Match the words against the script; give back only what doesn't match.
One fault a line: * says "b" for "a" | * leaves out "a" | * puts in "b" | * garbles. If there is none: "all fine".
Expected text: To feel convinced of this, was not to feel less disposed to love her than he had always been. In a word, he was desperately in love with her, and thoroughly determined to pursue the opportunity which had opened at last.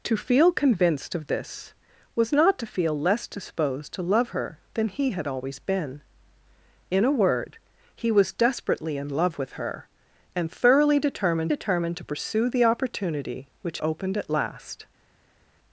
* puts in "determined"
* leaves out "had"